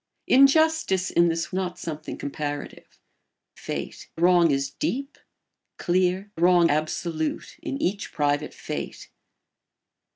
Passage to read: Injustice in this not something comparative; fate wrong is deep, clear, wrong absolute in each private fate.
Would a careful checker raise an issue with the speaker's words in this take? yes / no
no